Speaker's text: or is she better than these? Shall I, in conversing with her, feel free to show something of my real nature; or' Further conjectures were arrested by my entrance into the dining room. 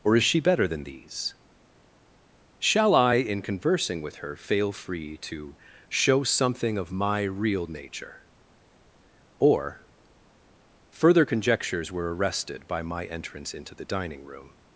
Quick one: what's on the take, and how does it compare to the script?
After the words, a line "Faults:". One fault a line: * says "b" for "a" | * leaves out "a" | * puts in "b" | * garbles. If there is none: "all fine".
or is she better than these? Shall I, in conversing with her, fail free to show something of my real nature; or' Further conjectures were arrested by my entrance into the dining room.
Faults:
* says "fail" for "feel"